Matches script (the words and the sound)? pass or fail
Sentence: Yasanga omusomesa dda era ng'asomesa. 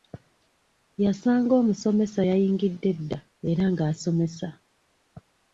fail